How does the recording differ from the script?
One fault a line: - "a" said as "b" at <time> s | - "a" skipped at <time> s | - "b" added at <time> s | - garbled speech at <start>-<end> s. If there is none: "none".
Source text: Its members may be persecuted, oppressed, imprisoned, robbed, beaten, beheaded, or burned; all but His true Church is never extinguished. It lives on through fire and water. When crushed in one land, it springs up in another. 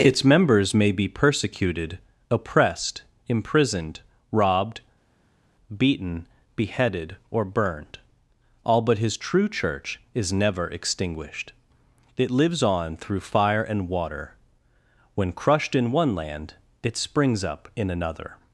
none